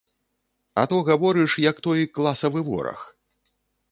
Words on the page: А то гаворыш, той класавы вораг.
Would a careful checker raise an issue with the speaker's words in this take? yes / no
yes